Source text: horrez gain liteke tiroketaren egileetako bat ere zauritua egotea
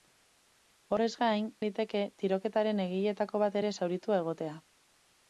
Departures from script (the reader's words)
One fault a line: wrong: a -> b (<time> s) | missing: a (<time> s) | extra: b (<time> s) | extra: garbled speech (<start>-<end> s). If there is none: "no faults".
no faults